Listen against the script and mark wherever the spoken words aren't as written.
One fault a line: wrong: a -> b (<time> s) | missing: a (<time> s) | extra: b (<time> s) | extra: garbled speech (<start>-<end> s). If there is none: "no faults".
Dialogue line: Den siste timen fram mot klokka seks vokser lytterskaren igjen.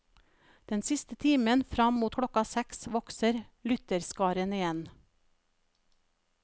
no faults